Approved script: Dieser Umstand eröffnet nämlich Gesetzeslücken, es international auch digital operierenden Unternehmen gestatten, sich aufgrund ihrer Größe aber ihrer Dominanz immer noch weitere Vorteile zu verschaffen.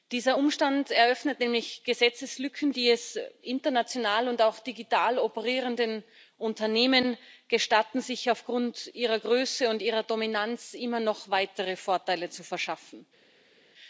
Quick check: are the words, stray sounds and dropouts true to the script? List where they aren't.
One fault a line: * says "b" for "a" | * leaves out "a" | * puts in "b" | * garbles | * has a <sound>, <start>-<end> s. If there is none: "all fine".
* puts in "die"
* puts in "und"
* says "und" for "aber"